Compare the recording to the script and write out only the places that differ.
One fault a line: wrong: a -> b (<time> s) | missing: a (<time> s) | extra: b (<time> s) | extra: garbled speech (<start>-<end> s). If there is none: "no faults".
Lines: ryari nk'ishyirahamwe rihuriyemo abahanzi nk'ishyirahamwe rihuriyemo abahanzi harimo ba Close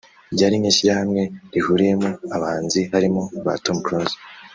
missing: nk'ishyirahamwe rihuriyemo abahanzi (2.8 s)
extra: Tom (3.6 s)